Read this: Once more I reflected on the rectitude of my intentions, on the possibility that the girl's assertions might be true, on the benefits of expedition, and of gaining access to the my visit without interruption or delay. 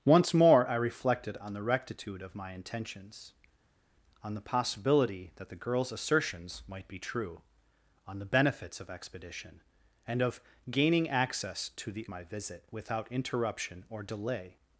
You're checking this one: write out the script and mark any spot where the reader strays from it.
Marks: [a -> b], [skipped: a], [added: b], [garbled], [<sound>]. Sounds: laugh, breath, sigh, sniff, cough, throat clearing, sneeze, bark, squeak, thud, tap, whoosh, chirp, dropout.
Once more I reflected on the rectitude of my intentions, on the possibility that the girl's assertions might be true, on the benefits of expedition, and of gaining access to the my visit without interruption or delay.